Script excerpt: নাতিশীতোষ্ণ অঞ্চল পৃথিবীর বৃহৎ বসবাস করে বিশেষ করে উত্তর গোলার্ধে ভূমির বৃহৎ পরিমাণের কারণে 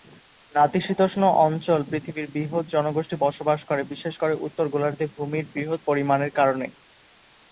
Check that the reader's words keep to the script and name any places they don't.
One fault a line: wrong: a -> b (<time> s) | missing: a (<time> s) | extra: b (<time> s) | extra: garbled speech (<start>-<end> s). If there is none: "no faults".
extra: জনগোষ্ঠী (2.7 s)